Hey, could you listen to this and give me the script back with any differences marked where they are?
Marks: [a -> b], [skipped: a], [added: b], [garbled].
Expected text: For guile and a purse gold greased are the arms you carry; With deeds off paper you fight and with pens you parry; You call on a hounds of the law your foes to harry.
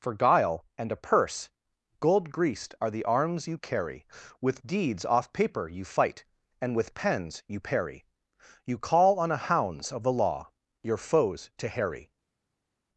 For guile and a purse gold greased are the arms you carry; With deeds off paper you fight and with pens you parry; You call on a hounds of the law your foes to harry.